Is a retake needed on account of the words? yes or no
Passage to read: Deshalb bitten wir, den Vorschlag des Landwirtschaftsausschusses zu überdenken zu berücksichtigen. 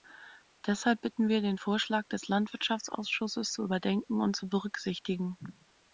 yes